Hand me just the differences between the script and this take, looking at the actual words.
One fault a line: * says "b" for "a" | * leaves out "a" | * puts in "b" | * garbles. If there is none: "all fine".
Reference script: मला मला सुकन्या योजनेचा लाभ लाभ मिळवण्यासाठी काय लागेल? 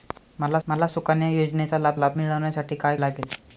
all fine